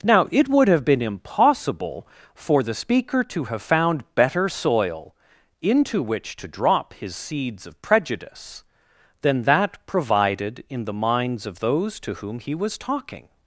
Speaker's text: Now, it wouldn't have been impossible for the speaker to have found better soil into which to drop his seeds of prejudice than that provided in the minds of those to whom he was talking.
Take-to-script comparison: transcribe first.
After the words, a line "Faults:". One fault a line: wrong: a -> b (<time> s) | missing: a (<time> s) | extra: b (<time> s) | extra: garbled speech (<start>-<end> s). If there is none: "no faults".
Now, it would have been impossible for the speaker to have found better soil into which to drop his seeds of prejudice than that provided in the minds of those to whom he was talking.
Faults:
wrong: wouldn't -> would (0.5 s)